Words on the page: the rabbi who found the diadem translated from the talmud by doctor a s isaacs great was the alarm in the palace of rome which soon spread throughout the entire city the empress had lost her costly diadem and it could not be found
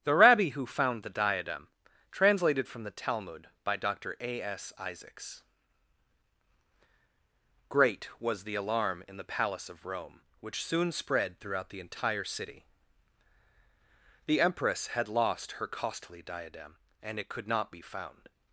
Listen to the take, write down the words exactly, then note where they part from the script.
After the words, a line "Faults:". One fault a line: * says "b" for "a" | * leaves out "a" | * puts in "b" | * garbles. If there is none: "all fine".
the rabbi who found the diadem translated from the talmud by doctor a s isaacs great was the alarm in the palace of rome which soon spread throughout the entire city the empress had lost her costly diadem and it could not be found
Faults:
all fine